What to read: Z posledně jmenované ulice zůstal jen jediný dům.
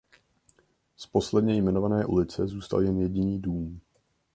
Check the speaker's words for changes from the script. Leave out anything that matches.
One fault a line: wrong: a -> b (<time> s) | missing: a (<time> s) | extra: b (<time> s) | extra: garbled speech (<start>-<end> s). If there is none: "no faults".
no faults